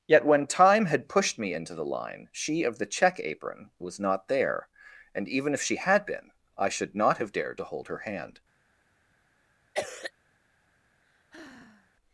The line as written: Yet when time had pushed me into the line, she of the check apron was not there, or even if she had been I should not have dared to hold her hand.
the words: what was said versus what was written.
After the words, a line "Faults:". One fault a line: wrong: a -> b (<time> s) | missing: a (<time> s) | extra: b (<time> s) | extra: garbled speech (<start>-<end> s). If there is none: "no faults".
Yet when time had pushed me into the line, she of the check apron was not there, and even if she had been I should not have dared to hold her hand.
Faults:
wrong: or -> and (5.1 s)